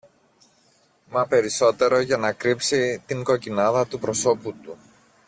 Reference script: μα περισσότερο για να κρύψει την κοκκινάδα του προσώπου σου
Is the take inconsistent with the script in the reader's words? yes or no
yes